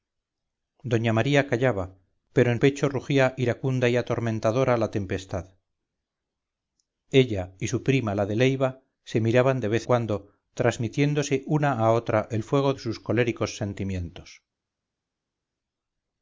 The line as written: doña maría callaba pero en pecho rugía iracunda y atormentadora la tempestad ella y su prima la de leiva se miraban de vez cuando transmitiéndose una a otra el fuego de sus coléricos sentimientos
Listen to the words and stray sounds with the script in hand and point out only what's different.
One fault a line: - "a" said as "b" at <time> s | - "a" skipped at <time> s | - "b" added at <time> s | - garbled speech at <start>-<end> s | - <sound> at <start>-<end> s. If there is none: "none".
none